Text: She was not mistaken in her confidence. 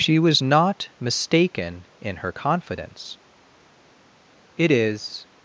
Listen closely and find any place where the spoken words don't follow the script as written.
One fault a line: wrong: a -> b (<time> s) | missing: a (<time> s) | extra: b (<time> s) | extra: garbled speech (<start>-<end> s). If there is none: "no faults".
extra: It is (4.6 s)